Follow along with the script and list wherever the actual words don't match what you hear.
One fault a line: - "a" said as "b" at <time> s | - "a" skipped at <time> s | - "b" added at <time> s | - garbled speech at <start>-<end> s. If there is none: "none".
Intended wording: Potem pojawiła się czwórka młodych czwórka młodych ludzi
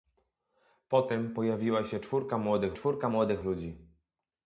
none